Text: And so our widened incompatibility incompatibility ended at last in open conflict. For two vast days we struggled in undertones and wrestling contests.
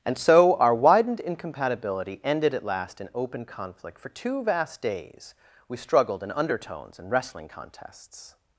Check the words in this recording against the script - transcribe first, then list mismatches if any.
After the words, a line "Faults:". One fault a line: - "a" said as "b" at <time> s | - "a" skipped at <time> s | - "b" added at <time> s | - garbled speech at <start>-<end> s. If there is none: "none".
And so our widened incompatibility ended at last in open conflict. For two vast days we struggled in undertones and wrestling contests.
Faults:
- "incompatibility" skipped at 2.2 s